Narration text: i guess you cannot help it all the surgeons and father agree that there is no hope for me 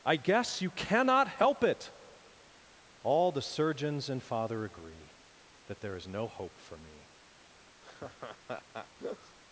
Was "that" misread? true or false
false